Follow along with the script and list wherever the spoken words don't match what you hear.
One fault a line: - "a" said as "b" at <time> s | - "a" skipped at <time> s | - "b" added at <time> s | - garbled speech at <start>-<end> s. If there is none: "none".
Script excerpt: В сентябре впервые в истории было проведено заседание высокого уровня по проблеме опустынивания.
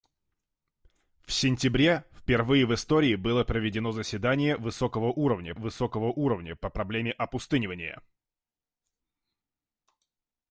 - "высокого уровня" added at 5.6 s